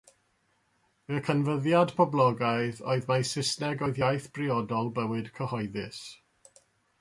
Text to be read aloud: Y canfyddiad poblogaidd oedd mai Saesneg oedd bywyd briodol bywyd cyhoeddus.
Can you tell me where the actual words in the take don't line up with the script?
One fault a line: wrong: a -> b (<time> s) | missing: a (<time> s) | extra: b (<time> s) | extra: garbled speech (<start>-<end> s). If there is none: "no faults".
wrong: bywyd -> iaith (4.0 s)